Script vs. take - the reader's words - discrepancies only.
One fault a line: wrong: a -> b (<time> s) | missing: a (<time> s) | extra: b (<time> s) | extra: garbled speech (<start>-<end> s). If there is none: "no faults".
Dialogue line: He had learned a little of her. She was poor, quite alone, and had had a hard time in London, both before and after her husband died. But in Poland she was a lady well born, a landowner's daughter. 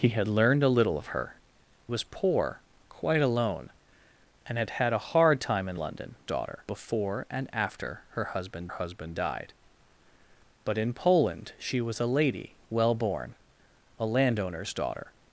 missing: She (1.4 s)
wrong: both -> daughter (6.3 s)
extra: husband (8.7 s)